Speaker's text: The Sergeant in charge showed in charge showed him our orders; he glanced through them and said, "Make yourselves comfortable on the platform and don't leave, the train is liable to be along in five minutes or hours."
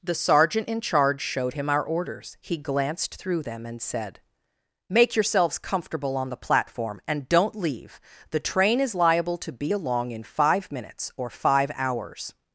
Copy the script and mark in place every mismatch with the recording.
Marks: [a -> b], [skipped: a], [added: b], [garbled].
The Sergeant in charge showed [skipped: in charge showed] him our orders; he glanced through them and said, "Make yourselves comfortable on the platform and don't leave, the train is liable to be along in five minutes or [added: five] hours."